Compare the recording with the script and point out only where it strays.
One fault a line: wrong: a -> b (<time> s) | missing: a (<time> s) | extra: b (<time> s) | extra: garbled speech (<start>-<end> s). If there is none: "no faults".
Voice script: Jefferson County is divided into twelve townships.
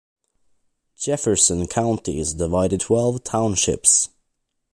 missing: into (2.8 s)